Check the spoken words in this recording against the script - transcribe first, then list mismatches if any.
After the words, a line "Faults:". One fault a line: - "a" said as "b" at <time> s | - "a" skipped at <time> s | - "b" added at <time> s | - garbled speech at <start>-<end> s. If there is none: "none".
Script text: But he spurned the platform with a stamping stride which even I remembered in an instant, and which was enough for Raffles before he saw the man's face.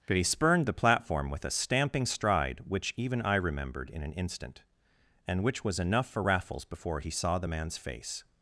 But he spurned the platform with a stamping stride which even I remembered in an instant, and which was enough for Raffles before he saw the man's face.
Faults:
none